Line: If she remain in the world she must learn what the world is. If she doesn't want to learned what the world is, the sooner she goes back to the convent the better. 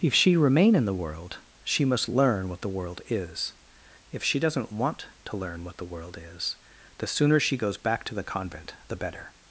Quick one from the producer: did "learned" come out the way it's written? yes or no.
no